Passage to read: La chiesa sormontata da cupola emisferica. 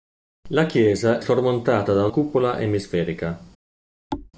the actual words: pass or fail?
pass